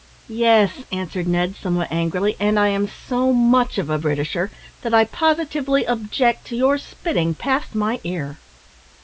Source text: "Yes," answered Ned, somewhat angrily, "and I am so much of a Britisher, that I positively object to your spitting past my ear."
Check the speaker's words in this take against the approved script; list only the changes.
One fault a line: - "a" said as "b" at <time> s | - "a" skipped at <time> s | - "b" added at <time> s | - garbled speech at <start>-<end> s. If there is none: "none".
none